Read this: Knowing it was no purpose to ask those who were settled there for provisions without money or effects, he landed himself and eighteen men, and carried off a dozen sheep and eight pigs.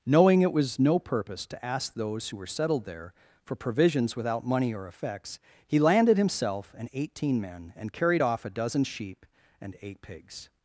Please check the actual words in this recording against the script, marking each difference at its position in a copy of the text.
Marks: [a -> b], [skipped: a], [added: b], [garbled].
Knowing it was no purpose to ask those who were settled there for provisions without money or effects, he landed himself and eighteen men, and carried off a dozen sheep and eight pigs.